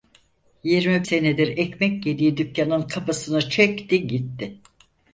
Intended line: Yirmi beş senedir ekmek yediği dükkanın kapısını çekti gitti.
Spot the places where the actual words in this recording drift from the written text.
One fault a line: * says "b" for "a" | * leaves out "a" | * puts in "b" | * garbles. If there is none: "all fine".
* leaves out "beş"